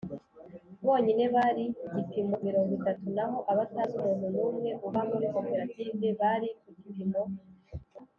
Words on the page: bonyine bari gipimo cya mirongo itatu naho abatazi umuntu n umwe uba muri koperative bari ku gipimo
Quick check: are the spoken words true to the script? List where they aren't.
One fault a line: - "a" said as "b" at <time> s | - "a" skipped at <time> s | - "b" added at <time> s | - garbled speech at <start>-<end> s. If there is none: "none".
- "cya" skipped at 2.4 s